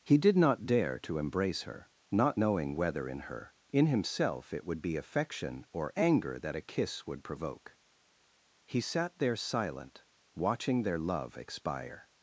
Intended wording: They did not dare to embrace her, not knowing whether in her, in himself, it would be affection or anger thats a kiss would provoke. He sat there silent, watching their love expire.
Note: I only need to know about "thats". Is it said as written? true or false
false